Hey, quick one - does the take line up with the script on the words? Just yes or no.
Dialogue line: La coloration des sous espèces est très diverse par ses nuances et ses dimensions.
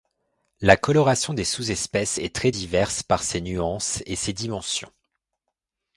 yes